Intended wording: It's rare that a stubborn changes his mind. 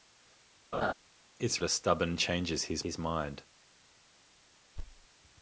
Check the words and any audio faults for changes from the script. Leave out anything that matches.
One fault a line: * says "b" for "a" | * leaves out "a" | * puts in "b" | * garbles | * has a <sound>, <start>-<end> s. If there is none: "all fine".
* has a laugh, 0.7-0.9 s
* leaves out "rare that"
* puts in "his"
* has a thud, 4.8-5.1 s